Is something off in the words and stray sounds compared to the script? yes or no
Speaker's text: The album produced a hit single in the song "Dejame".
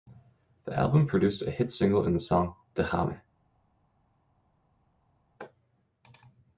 no